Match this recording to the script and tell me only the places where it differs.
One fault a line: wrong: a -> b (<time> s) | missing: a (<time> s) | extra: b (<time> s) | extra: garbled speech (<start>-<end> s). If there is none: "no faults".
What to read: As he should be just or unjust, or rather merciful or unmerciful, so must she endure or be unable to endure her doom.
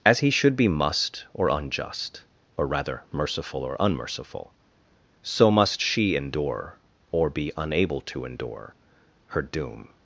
wrong: just -> must (0.7 s)